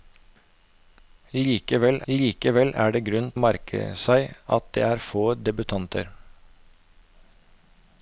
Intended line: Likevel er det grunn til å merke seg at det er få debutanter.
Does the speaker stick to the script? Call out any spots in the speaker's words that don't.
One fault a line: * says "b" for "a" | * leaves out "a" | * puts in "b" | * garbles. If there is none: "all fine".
* puts in "likevel"
* leaves out "til"